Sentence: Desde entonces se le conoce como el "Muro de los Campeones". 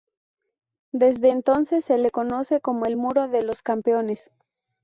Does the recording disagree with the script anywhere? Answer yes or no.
no